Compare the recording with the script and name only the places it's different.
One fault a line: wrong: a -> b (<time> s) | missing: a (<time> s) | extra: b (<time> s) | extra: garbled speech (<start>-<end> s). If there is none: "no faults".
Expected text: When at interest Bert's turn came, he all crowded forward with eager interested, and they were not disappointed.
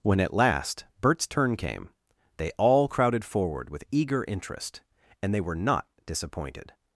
wrong: interest -> last (0.3 s)
wrong: he -> they (2.4 s)
wrong: interested -> interest (4.3 s)